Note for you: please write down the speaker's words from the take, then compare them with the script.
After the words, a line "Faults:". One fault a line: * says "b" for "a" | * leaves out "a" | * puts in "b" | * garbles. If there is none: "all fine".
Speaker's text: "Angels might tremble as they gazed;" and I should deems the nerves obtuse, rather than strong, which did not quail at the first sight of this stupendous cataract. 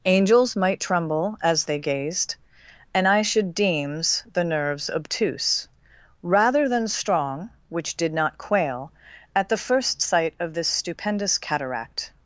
"Angels might tremble as they gazed;" and I should deems the nerves obtuse, rather than strong, which did not quail at the first sight of this stupendous cataract.
Faults:
all fine